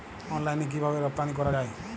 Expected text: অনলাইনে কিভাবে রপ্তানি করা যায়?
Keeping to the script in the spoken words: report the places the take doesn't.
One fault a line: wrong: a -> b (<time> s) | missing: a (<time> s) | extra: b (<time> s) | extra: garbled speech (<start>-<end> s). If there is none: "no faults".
no faults